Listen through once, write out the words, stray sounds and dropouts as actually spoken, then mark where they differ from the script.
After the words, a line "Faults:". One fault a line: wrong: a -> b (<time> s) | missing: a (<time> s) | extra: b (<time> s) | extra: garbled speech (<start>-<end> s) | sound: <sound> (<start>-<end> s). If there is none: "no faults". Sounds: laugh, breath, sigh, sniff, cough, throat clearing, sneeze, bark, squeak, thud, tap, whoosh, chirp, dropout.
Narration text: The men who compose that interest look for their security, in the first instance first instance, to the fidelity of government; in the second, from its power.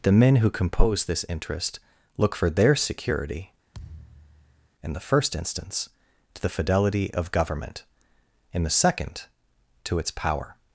The men who compose this interest look for their security, in the first instance, to the fidelity of government; in the second, to its power.
Faults:
wrong: that -> this (1.1 s)
sound: thud (3.7-4.7 s)
missing: first instance (5.9 s)
wrong: from -> to (9.9 s)